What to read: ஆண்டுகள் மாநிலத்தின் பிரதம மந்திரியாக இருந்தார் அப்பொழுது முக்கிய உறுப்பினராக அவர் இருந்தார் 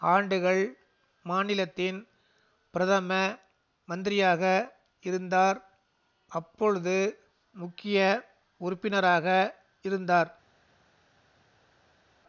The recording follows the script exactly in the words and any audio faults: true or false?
false